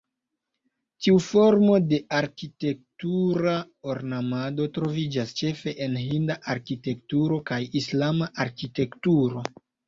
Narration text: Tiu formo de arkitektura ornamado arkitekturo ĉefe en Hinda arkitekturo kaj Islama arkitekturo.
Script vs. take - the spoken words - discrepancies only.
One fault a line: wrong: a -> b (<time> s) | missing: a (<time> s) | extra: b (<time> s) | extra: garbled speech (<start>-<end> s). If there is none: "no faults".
wrong: arkitekturo -> troviĝas (4.8 s)